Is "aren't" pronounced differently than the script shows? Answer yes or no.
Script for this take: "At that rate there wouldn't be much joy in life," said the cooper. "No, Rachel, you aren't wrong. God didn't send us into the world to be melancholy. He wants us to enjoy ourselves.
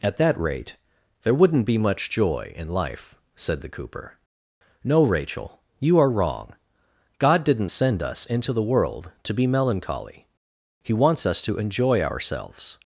yes